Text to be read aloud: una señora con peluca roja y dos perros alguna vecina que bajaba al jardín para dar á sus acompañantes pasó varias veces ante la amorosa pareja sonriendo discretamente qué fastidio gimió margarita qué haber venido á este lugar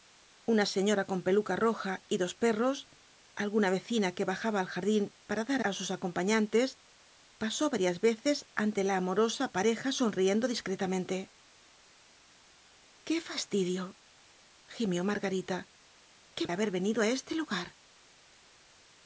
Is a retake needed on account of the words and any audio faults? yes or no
no